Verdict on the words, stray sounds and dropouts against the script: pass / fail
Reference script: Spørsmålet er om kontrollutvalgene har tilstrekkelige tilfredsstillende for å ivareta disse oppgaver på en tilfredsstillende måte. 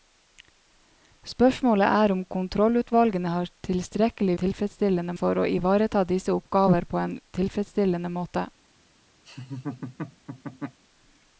fail